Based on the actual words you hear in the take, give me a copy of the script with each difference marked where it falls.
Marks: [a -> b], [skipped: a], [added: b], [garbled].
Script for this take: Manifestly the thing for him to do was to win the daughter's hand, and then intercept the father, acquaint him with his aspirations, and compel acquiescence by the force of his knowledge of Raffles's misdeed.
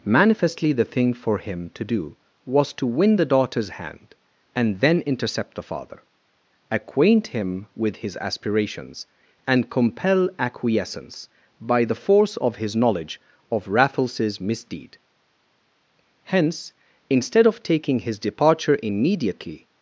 Manifestly the thing for him to do was to win the daughter's hand, and then intercept the father, acquaint him with his aspirations, and compel acquiescence by the force of his knowledge of Raffles's misdeed. [added: Hence instead of taking his departure immediately]